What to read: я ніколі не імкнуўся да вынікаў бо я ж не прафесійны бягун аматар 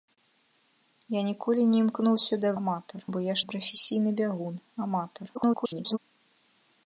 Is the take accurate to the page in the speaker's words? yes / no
no